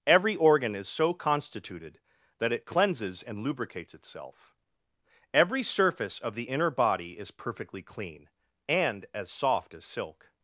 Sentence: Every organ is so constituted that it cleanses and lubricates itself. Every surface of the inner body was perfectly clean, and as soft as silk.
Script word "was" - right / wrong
wrong